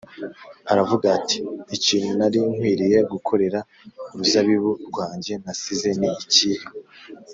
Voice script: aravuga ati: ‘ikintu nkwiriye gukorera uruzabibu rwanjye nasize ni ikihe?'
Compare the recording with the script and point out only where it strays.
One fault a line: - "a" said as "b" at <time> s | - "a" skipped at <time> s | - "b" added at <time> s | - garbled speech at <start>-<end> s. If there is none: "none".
- "nari" added at 2.2 s